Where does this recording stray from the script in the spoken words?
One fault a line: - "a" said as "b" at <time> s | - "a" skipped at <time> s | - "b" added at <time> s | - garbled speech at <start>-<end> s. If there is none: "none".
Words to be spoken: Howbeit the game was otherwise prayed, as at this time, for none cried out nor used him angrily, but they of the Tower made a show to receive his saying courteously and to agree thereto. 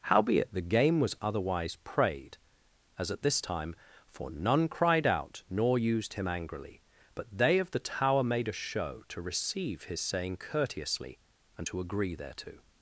none